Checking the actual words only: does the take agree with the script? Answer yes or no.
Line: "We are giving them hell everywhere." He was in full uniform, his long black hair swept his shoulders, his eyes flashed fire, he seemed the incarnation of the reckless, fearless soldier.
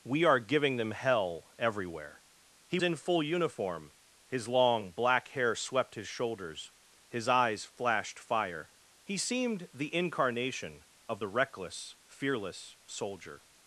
no